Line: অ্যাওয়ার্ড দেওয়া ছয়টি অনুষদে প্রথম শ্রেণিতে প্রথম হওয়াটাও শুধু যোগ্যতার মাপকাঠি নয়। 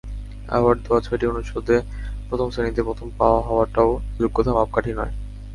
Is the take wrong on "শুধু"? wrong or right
wrong